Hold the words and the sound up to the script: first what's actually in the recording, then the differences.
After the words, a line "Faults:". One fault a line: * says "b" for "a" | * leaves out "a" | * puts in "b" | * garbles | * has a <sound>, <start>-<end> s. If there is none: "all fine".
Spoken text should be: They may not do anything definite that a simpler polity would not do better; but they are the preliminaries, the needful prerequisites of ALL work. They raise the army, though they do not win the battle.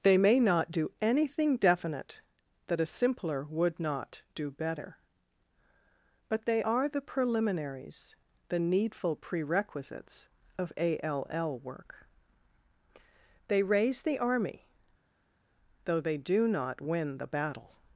They may not do anything definite that a simpler would not do better; but they are the preliminaries, the needful prerequisites of ALL work. They raise the army, though they do not win the battle.
Faults:
* leaves out "polity"